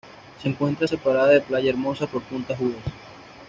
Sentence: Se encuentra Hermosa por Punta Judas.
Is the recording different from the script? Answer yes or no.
yes